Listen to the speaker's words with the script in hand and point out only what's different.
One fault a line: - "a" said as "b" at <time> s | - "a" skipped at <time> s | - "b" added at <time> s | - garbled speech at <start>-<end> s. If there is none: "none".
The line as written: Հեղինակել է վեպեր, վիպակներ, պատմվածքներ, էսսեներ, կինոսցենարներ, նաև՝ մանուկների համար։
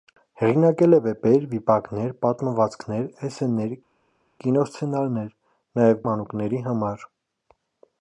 none